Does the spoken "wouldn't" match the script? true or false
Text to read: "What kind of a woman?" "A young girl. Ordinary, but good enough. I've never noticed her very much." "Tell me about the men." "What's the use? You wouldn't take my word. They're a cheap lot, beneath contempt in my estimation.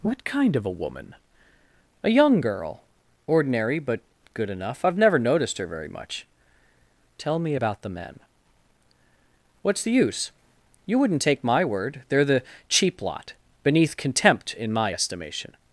true